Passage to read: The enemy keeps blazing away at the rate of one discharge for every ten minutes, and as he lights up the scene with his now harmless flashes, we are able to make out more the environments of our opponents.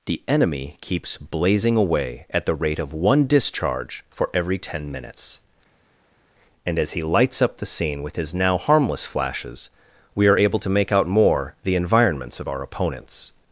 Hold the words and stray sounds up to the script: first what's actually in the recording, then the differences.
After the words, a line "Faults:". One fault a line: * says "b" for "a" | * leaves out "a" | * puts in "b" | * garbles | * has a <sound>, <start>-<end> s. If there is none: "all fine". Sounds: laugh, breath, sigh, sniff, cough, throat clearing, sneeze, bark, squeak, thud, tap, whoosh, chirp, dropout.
The enemy keeps blazing away at the rate of one discharge for every ten minutes, and as he lights up the scene with his now harmless flashes, we are able to make out more the environments of our opponents.
Faults:
all fine